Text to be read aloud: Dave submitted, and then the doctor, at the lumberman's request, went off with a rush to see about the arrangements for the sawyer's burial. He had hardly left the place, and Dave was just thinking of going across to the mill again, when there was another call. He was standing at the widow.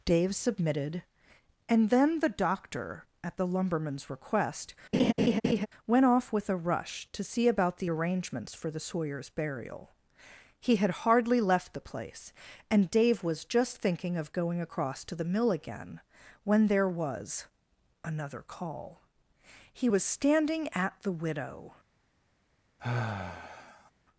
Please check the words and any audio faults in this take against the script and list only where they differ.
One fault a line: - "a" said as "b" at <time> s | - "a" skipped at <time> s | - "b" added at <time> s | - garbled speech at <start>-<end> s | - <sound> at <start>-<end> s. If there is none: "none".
- laugh at 4.9-5.7 s
- sigh at 22.8-23.9 s